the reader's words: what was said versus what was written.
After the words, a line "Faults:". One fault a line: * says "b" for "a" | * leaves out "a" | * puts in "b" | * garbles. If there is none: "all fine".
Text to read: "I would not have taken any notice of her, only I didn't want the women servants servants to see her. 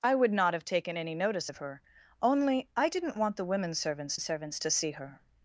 "I would not have taken any notice of her, only I didn't want the women servants servants to see her.
Faults:
all fine